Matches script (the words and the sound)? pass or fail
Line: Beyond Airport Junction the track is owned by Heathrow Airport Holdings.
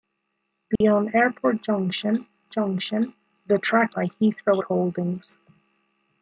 fail